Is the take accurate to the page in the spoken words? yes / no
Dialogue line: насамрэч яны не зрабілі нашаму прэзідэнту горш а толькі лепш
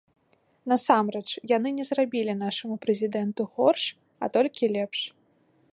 yes